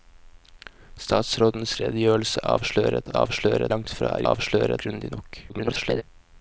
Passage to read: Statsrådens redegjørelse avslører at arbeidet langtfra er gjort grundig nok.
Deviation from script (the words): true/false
true